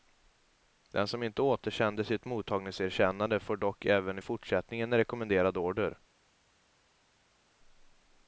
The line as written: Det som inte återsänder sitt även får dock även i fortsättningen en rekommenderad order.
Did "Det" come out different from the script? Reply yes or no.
yes